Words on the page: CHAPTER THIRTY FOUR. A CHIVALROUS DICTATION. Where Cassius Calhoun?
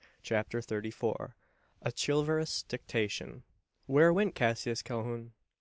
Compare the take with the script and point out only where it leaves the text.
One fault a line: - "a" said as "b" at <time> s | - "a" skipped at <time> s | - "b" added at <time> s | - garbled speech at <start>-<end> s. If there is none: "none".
- "went" added at 4.1 s